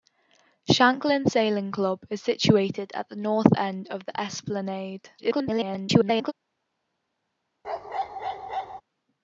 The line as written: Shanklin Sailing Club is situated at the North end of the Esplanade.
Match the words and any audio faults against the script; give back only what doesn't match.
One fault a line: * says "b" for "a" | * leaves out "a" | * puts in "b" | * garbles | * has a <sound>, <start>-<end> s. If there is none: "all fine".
* garbles
* has a bark, 7.6-8.8 s